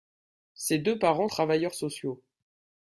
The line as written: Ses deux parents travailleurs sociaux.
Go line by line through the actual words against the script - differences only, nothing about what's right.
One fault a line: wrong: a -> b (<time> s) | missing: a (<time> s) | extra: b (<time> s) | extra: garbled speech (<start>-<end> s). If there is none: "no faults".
no faults